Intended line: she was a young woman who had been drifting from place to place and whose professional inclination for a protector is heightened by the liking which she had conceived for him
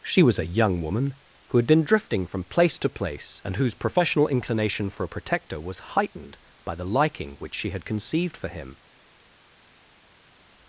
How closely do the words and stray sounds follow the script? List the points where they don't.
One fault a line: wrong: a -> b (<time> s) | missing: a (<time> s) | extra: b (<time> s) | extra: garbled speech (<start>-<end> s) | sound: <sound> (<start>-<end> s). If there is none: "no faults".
wrong: is -> was (5.6 s)